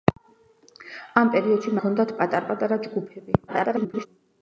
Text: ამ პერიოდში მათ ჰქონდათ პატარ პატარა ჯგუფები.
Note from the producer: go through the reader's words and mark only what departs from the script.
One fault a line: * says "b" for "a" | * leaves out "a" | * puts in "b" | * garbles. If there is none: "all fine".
* leaves out "მათ"
* garbles